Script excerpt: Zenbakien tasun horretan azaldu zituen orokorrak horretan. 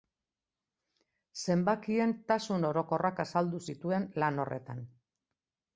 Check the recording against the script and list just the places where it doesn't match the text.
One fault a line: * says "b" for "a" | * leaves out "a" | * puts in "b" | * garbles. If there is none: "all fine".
* says "orokorrak" for "horretan"
* says "lan" for "orokorrak"